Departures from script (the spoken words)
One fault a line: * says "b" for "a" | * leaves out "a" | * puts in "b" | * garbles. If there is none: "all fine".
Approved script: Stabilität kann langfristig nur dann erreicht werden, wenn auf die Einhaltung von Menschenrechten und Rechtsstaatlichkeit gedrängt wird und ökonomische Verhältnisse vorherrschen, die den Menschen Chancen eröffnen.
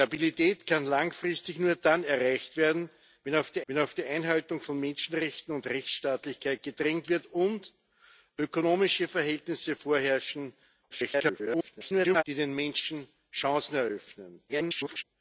* puts in "wenn auf die"
* garbles
* garbles